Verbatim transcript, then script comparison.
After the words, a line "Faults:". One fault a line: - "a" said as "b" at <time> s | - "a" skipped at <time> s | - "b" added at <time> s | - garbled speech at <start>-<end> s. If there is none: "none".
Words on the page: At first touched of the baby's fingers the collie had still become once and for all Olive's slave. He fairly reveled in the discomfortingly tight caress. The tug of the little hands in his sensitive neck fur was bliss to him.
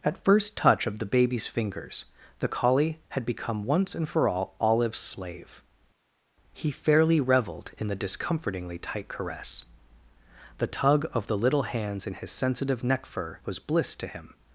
At first touch of the baby's fingers the collie had become once and for all Olive's slave. He fairly reveled in the discomfortingly tight caress. The tug of the little hands in his sensitive neck fur was bliss to him.
Faults:
- "touched" said as "touch" at 0.6 s
- "still" skipped at 3.2 s